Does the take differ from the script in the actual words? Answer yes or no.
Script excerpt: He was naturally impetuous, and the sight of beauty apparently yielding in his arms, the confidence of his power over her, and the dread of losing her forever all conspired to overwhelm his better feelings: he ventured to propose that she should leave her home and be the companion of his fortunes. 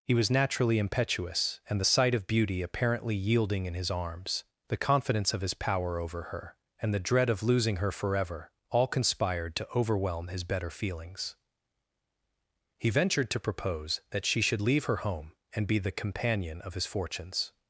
no